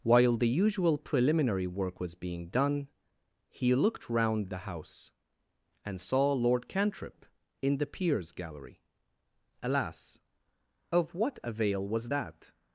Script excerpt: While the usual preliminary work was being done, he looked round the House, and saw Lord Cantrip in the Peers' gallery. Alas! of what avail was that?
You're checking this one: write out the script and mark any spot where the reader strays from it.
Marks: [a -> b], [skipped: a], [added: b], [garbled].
While the usual preliminary work was being done, he looked round the House, and saw Lord Cantrip in the Peers' gallery. Alas! of what avail was that?